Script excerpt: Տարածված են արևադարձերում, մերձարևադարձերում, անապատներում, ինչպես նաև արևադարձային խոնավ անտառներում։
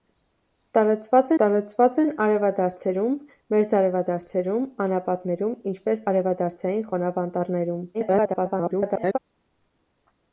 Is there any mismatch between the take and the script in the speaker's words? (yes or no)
yes